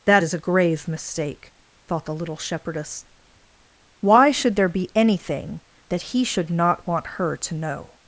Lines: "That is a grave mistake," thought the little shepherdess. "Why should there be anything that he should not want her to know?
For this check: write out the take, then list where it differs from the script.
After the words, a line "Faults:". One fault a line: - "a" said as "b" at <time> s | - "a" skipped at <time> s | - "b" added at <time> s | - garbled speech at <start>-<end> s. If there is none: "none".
"That is a grave mistake," thought the little shepherdess. "Why should there be anything that he should not want her to know?
Faults:
none